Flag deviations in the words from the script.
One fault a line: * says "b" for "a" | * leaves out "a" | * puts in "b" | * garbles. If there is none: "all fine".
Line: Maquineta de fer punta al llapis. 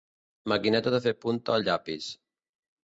all fine